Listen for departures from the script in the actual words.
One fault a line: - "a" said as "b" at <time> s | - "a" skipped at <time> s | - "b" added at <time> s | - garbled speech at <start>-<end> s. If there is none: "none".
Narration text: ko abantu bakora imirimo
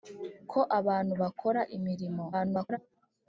- garbled speech at 2.3-2.8 s